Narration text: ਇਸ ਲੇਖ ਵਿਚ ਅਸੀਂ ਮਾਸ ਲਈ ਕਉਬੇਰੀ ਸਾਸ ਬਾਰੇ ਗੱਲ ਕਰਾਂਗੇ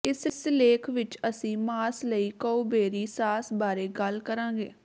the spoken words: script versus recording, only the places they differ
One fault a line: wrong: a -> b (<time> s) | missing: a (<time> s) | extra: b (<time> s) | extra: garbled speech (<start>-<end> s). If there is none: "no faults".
no faults